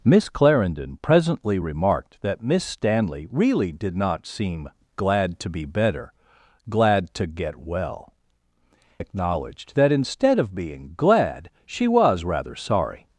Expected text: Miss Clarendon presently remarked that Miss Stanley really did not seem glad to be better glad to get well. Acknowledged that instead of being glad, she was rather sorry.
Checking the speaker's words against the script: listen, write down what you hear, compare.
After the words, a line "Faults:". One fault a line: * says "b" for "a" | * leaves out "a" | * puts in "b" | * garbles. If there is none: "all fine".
Miss Clarendon presently remarked that Miss Stanley really did not seem glad to be better glad to get well. Acknowledged that instead of being glad, she was rather sorry.
Faults:
all fine